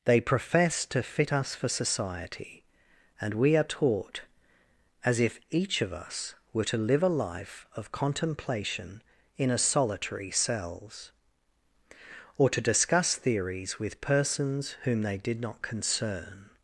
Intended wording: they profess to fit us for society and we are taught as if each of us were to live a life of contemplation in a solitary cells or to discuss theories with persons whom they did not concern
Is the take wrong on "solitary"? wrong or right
right